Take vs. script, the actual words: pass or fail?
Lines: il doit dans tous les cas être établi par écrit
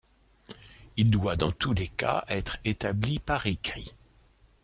pass